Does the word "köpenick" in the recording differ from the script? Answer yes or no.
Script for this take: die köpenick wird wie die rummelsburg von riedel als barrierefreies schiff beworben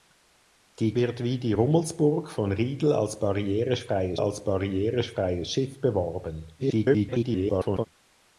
yes